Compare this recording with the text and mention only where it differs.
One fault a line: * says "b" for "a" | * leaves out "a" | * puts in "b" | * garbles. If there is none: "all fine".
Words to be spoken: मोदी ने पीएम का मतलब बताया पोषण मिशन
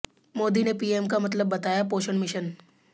all fine